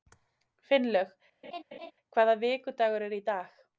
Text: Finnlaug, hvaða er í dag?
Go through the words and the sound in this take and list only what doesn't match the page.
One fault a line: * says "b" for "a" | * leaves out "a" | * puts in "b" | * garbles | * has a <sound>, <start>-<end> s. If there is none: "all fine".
* has a laugh, 1.4-1.9 s
* puts in "vikudagur"